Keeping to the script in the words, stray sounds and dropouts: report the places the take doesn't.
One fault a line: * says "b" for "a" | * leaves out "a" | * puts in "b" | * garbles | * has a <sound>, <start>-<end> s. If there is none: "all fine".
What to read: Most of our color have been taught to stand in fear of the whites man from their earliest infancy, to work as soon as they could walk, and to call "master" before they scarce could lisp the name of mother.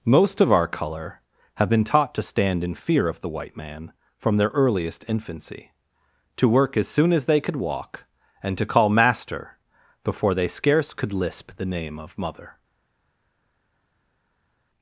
* says "white" for "whites"